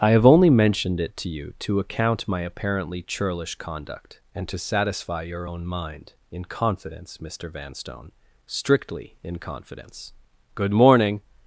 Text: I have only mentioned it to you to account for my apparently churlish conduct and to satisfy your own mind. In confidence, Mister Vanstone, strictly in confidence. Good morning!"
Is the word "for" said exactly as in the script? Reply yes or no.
no